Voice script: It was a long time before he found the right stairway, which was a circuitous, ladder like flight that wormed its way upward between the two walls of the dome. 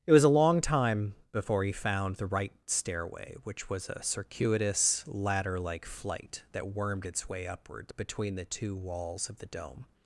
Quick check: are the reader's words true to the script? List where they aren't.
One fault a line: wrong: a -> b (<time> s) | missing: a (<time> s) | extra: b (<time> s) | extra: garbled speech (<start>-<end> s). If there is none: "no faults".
no faults